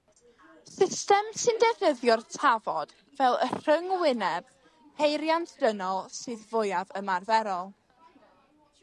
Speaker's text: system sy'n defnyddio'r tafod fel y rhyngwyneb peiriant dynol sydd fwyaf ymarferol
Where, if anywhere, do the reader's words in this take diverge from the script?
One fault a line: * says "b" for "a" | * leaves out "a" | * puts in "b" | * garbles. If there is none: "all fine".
all fine